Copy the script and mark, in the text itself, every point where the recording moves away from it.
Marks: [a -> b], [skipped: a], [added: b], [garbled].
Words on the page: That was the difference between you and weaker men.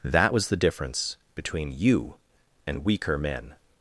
That was the difference between you and weaker men.